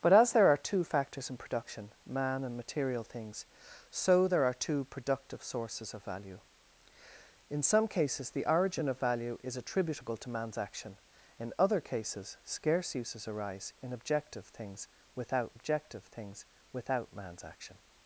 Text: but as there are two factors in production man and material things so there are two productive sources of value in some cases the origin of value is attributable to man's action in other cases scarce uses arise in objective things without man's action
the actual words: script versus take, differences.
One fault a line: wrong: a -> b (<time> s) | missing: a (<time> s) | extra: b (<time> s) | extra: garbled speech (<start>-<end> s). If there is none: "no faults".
extra: objective things without (15.5 s)